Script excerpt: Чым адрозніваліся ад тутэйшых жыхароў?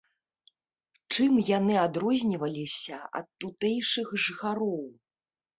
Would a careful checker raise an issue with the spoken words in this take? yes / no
yes